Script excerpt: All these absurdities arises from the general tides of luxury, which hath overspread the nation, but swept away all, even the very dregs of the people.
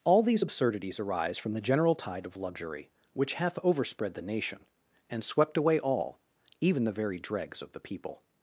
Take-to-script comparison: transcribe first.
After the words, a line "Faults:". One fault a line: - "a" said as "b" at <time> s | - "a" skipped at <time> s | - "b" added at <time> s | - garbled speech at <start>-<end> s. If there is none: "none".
All these absurdities arise from the general tide of luxury, which hath overspread the nation, and swept away all, even the very dregs of the people.
Faults:
- "arises" said as "arise" at 1.0 s
- "tides" said as "tide" at 2.0 s
- "but" said as "and" at 5.1 s